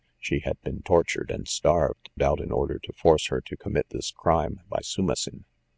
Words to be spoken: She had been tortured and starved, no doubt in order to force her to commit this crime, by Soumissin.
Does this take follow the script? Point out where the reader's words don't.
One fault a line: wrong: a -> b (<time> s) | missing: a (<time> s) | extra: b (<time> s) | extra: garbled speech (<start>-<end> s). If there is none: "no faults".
missing: no (2.1 s)